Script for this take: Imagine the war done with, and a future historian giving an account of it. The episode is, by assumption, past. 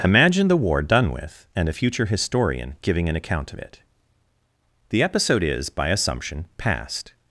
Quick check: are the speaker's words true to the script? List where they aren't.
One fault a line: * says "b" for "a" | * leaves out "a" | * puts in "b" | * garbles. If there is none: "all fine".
all fine